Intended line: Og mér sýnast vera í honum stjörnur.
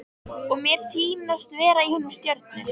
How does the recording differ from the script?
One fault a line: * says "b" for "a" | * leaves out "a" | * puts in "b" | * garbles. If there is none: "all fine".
all fine